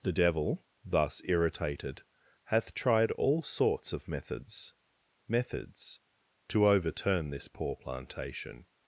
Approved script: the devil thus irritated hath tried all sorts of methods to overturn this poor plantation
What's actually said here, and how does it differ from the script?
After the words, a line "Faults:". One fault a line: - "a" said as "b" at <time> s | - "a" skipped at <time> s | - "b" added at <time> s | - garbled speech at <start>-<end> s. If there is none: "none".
the devil thus irritated hath tried all sorts of methods methods to overturn this poor plantation
Faults:
- "methods" added at 5.3 s